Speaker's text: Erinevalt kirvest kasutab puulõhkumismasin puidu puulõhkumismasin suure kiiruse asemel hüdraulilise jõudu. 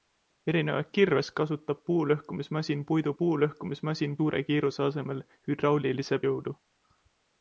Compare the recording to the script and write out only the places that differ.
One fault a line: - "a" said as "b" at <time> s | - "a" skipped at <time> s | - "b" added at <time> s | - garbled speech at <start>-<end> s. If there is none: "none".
none